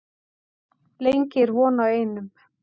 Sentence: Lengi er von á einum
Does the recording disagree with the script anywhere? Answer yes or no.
no